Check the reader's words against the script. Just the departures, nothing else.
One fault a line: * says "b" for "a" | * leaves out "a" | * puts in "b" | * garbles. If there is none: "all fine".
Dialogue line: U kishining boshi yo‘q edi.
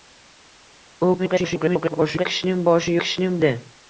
* garbles
* says "kishining" for "yo‘q"